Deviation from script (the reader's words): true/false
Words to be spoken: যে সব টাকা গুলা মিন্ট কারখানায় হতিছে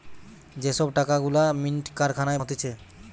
false